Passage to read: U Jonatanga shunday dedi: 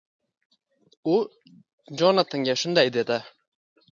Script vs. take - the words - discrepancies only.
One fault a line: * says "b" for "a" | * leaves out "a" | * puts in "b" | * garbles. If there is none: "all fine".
all fine